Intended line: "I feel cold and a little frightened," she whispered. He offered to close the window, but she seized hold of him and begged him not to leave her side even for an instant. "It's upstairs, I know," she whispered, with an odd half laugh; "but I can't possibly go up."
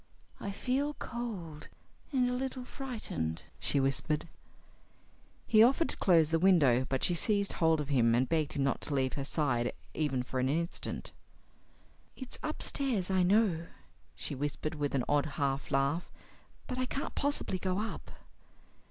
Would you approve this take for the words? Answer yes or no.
yes